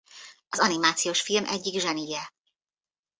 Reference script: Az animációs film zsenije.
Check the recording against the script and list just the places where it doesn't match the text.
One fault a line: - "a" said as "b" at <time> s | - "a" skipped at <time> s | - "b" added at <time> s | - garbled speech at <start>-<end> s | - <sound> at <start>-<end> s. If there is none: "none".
- "egyik" added at 1.4 s